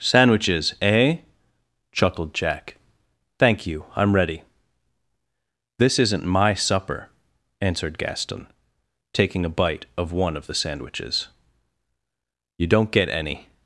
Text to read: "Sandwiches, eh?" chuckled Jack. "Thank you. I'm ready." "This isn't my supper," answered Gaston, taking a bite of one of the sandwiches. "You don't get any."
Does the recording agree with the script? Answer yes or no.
yes